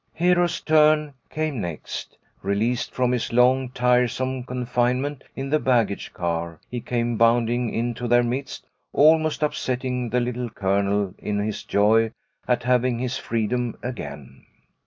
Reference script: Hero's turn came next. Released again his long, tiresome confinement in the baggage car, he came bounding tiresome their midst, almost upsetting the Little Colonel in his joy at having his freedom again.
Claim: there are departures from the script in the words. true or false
true